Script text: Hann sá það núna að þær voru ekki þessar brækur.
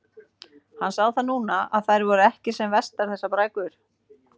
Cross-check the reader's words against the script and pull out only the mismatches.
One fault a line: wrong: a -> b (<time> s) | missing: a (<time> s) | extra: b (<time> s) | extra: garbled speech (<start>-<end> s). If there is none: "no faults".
extra: sem verstar (2.6 s)